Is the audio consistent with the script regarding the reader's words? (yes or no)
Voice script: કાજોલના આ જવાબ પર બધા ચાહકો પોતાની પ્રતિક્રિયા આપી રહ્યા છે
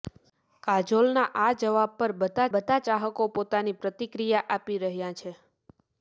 no